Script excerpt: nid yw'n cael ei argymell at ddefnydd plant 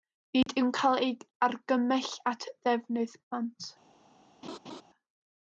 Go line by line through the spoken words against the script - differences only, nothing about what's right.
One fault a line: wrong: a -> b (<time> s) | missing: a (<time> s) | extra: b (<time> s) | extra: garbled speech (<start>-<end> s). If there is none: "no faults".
no faults